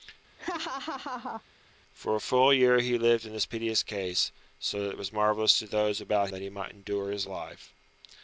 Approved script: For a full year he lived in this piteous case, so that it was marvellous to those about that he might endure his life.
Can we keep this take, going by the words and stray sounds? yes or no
no